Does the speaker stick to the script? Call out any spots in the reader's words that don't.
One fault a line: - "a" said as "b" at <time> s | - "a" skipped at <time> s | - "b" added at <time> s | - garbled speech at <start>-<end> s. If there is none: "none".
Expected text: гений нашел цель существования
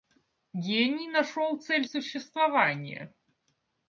none